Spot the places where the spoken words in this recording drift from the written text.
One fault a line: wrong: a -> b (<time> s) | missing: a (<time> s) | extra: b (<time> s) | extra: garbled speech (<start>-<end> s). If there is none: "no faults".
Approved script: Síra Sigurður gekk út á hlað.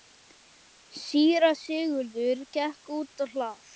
no faults